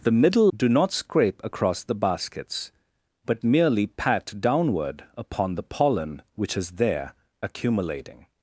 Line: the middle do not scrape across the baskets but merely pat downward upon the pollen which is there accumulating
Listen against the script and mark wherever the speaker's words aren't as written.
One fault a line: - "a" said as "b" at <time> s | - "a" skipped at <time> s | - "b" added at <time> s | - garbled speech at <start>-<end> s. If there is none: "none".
none